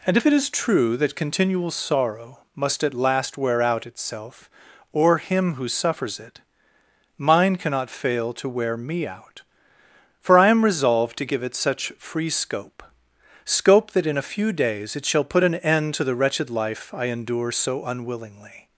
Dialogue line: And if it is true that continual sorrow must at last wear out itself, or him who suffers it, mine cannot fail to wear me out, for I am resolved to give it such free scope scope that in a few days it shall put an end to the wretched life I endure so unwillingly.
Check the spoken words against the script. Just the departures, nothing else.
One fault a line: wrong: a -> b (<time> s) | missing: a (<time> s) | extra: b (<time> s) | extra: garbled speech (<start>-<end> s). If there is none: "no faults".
no faults